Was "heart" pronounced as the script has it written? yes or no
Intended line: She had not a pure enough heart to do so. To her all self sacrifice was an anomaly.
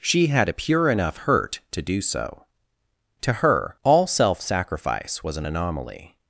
no